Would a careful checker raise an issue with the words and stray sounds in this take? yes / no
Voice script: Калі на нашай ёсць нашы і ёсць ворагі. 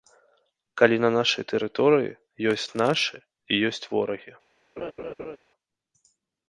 yes